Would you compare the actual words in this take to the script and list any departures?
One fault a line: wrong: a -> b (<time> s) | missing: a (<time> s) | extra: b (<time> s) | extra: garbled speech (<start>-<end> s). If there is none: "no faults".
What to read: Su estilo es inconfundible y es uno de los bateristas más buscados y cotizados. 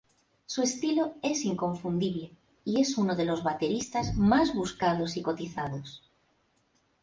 no faults